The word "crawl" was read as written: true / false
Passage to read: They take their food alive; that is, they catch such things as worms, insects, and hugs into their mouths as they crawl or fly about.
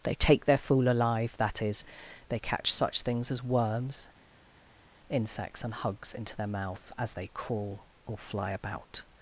true